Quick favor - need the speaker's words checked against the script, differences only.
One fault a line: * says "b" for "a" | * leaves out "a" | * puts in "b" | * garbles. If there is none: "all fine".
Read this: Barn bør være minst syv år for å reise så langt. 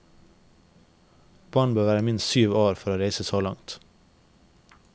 all fine